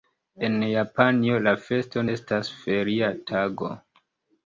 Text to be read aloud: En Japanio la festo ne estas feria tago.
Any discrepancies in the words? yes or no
yes